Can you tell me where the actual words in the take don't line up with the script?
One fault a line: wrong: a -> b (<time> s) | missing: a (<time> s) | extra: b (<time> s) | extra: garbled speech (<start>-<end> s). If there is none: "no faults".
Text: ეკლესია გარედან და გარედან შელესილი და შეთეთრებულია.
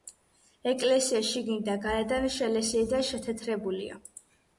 wrong: გარედან -> შიგნით (1.3 s)